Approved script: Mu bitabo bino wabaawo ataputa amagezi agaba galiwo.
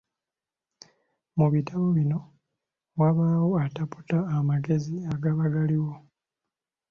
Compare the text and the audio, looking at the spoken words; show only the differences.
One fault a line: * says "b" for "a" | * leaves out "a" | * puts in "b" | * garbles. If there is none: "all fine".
all fine